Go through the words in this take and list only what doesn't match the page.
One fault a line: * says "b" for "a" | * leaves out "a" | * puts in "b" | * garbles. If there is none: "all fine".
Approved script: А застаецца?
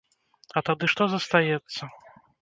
* puts in "тады што"